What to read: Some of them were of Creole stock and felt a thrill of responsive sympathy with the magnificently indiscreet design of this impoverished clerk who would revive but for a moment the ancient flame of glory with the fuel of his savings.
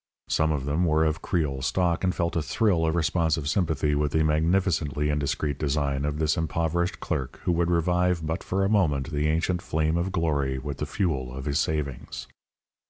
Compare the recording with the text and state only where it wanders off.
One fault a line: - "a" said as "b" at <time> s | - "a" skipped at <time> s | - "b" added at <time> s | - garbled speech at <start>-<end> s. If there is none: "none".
none